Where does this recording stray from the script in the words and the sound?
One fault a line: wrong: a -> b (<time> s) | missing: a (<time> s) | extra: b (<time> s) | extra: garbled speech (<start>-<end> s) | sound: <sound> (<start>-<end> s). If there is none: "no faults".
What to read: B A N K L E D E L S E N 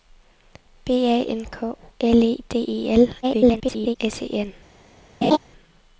extra: garbled speech (3.2-4.0 s)
sound: laugh (5.2-5.4 s)